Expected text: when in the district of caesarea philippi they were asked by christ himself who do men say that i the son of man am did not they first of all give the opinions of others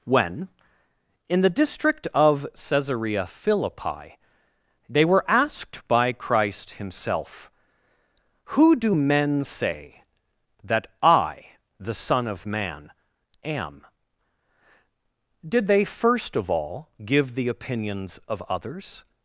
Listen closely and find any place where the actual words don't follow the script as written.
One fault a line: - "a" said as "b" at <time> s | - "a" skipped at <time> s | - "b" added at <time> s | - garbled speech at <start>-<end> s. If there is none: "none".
- "not" skipped at 15.7 s